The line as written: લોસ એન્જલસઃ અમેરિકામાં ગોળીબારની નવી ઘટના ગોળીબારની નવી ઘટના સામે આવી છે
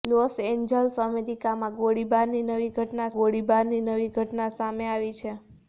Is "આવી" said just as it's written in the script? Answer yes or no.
yes